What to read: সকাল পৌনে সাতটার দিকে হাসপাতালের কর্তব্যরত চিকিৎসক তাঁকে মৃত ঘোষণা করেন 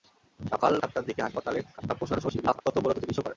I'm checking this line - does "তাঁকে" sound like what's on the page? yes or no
no